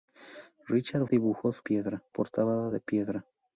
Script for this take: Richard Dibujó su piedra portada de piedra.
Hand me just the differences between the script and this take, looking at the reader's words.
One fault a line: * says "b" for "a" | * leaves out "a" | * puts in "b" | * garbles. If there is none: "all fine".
all fine